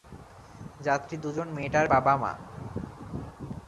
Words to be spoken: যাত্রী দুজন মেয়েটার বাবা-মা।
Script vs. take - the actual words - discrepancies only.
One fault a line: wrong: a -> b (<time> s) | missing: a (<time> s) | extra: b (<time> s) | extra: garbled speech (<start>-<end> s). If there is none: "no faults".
no faults